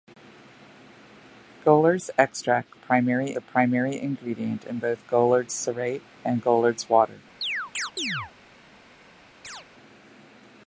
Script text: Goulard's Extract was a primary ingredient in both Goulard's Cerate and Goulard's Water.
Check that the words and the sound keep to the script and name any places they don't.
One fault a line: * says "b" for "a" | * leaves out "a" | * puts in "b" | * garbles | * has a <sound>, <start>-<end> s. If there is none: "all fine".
* says "primary" for "was"
* has a chirp, 7.4-8.3 s
* has a chirp, 9.4-9.7 s